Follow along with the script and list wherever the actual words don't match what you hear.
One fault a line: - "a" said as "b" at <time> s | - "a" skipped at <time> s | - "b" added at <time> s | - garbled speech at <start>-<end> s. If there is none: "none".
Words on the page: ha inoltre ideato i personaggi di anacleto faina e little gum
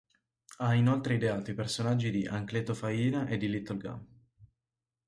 - "di" added at 3.4 s